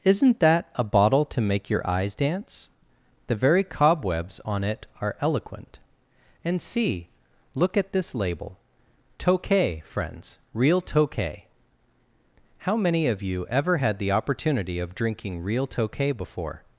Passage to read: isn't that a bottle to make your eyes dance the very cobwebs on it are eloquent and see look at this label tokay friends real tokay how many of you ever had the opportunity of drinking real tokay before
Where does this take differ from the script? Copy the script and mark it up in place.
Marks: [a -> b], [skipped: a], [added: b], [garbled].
isn't that a bottle to make your eyes dance the very cobwebs on it are eloquent and see look at this label tokay friends real tokay how many of you ever had the opportunity of drinking real tokay before